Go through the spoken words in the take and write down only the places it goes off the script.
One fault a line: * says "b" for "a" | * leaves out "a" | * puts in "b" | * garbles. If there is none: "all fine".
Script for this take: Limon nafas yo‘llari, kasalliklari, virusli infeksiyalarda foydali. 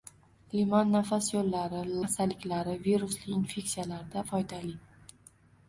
all fine